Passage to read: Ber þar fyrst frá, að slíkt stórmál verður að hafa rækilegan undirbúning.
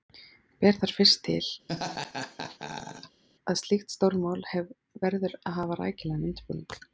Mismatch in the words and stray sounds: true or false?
true